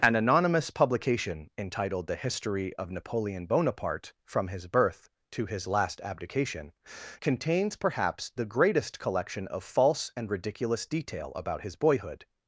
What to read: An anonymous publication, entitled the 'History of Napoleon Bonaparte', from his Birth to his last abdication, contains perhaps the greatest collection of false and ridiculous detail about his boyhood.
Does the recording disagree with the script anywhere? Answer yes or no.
no